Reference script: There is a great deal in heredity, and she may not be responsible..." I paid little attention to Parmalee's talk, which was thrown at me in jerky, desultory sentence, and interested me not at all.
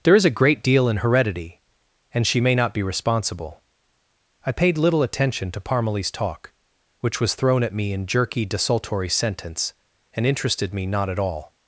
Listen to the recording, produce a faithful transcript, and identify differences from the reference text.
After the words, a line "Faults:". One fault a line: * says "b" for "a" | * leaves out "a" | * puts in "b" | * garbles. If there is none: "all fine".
There is a great deal in heredity, and she may not be responsible..." I paid little attention to Parmalee's talk, which was thrown at me in jerky, desultory sentence, and interested me not at all.
Faults:
all fine